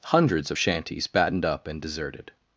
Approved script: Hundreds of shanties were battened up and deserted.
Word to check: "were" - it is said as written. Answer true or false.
false